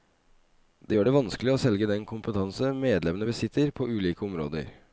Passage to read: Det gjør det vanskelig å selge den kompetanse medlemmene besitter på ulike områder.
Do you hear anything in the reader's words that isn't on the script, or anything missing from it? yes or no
no